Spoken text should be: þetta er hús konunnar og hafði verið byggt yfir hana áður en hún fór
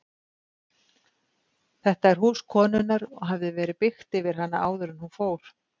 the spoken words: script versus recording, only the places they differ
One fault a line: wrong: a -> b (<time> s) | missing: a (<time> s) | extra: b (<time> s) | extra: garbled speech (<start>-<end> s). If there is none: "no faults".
no faults